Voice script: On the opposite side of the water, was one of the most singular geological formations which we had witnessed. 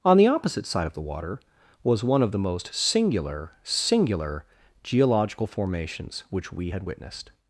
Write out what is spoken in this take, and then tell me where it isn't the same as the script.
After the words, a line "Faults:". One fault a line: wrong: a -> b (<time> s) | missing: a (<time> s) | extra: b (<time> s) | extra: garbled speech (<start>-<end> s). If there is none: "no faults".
On the opposite side of the water, was one of the most singular singular geological formations which we had witnessed.
Faults:
extra: singular (3.6 s)